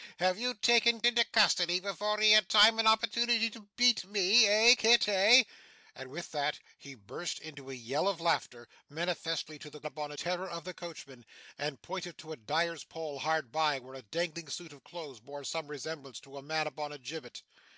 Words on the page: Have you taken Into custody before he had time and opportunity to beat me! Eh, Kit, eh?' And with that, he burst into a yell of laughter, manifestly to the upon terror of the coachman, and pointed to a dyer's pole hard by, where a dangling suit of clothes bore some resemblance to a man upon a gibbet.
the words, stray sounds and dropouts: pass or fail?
pass